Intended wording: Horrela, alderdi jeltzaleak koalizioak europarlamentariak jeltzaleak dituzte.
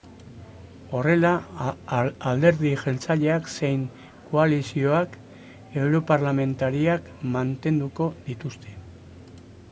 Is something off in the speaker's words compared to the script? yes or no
yes